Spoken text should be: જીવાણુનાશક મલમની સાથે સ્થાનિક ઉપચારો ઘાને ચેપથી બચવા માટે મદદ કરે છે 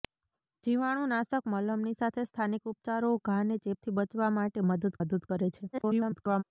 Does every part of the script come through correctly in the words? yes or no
no